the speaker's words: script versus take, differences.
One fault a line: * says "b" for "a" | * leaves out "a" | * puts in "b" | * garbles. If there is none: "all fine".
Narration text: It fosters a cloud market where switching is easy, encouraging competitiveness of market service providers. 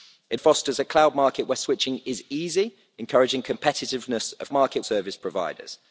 all fine